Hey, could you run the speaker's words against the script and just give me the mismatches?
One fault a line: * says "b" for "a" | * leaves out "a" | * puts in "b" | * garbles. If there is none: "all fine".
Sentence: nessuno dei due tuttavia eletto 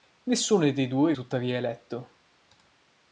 all fine